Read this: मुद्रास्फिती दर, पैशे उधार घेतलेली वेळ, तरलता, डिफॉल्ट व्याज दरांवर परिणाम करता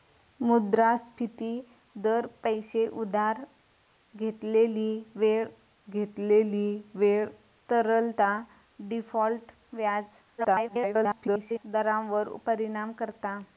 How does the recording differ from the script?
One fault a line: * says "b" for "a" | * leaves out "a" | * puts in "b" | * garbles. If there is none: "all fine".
* puts in "घेतलेली वेळ"
* garbles